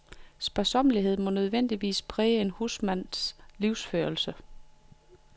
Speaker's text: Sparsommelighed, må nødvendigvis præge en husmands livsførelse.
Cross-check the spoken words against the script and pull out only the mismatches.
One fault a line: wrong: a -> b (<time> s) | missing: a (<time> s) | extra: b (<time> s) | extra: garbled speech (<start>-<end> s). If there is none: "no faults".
no faults